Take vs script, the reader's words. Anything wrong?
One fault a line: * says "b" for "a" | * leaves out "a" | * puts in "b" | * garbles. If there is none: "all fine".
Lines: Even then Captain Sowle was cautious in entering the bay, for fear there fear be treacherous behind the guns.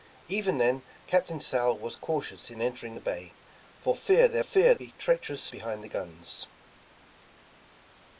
all fine